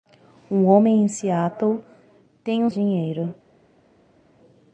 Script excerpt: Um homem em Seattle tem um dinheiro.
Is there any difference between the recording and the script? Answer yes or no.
no